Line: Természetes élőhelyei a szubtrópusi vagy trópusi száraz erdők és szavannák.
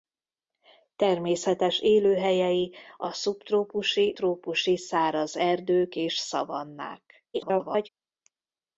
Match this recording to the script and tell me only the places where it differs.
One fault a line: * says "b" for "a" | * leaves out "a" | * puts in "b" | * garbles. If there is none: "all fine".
* leaves out "vagy"
* garbles